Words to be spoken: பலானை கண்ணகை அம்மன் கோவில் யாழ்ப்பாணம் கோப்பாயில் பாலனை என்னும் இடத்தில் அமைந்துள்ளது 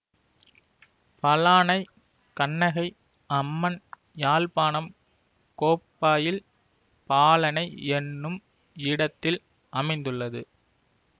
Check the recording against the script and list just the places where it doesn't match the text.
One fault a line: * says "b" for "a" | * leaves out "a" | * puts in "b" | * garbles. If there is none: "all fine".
* leaves out "கோவில்"